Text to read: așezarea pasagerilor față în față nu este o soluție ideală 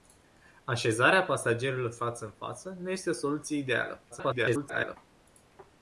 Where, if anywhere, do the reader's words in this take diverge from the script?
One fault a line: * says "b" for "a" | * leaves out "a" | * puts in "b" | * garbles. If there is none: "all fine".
* garbles